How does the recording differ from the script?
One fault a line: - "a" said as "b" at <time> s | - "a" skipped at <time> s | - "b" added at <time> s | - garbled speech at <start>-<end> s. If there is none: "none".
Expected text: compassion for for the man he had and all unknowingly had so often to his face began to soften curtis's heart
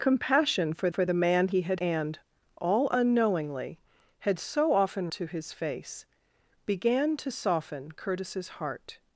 none